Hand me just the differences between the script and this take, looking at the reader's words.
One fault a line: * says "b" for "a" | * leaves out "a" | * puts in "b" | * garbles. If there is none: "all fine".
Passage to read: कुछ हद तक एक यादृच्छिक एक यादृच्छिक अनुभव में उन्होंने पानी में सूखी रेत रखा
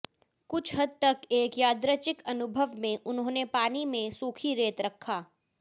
* leaves out "एक यादृच्छिक"